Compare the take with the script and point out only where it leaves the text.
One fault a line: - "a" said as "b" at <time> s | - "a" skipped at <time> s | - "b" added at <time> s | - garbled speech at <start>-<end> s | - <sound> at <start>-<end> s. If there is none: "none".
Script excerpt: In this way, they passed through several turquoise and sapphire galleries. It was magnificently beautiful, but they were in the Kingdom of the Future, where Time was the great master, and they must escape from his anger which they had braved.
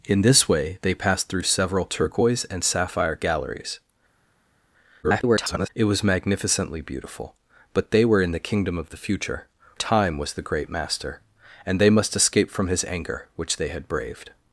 - garbled speech at 5.0-5.7 s
- "where" skipped at 9.5 s